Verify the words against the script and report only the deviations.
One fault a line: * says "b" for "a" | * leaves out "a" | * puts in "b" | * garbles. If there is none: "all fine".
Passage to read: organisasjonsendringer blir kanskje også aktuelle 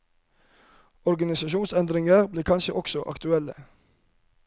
all fine